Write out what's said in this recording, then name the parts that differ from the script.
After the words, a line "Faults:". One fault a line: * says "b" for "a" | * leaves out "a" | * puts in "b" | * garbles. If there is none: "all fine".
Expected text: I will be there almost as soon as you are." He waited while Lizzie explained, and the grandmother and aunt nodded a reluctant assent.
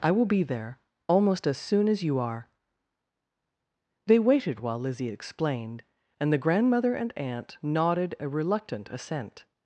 I will be there almost as soon as you are." They waited while Lizzie explained, and the grandmother and aunt nodded a reluctant assent.
Faults:
* says "They" for "He"